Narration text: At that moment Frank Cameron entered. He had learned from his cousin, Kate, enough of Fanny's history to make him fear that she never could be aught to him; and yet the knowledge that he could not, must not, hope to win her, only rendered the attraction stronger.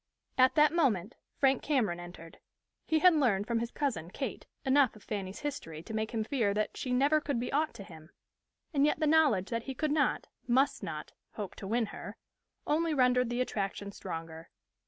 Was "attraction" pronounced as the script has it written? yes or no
yes